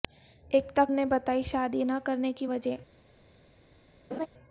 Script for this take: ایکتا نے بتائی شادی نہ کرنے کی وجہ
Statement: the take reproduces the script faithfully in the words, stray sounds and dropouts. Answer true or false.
false